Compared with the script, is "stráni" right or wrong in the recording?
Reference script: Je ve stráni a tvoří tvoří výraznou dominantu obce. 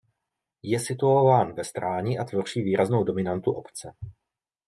right